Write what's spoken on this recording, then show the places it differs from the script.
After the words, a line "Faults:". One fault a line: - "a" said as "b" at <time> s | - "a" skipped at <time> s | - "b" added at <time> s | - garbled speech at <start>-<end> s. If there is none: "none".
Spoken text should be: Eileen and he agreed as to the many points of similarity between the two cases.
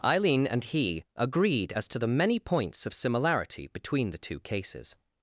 Eileen and he agreed as to the many points of similarity between the two cases.
Faults:
none